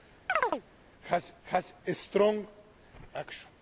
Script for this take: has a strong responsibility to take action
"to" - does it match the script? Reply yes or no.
no